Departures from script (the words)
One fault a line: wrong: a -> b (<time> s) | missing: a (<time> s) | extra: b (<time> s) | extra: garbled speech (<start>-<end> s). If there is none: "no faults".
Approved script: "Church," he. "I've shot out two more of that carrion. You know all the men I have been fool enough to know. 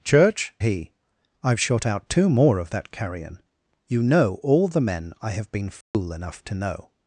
no faults